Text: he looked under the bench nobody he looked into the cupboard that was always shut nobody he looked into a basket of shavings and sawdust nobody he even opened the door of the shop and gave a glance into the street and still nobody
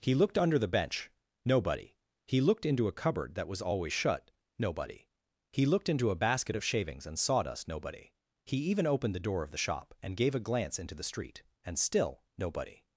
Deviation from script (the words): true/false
true